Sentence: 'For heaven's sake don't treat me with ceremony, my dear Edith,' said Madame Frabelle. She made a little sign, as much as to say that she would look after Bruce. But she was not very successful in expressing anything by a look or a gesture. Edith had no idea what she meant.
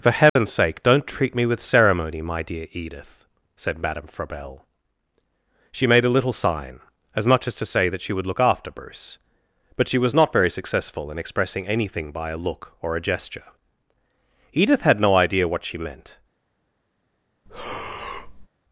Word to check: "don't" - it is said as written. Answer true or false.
true